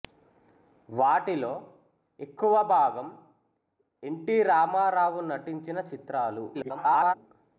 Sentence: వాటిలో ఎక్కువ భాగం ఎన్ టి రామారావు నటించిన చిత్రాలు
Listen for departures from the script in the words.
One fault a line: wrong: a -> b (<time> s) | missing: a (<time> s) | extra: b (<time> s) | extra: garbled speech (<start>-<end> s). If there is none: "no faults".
extra: garbled speech (6.5-7.1 s)